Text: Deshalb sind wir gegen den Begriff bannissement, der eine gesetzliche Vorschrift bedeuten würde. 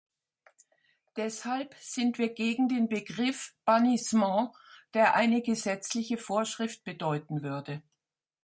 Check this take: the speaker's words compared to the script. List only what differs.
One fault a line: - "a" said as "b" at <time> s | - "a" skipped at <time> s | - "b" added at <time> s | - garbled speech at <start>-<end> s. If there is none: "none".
none